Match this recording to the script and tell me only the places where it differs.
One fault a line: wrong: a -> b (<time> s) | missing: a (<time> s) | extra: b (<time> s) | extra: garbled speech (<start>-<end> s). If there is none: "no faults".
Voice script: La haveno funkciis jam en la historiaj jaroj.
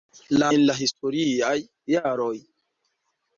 missing: haveno funkciis jam (0.5 s)